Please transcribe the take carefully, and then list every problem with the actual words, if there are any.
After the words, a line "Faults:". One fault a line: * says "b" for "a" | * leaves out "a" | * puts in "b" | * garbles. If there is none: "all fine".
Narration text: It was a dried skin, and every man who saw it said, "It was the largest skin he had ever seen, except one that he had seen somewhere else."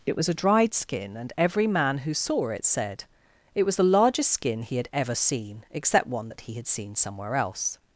It was a dried skin, and every man who saw it said, "It was the largest skin he had ever seen, except one that he had seen somewhere else."
Faults:
all fine